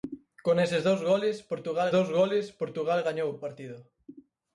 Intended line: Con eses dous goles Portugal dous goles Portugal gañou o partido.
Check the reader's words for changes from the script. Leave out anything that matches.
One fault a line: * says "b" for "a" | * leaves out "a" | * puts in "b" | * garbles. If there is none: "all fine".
all fine